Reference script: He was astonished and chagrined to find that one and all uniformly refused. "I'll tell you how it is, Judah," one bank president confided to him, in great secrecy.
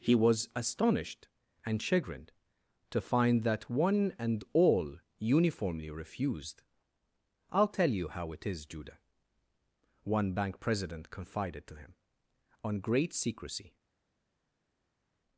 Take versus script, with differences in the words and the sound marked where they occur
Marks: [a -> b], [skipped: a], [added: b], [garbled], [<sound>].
He was astonished and chagrined to find that one and all uniformly refused. "I'll tell you how it is, Judah," one bank president confided to him, [in -> on] great secrecy.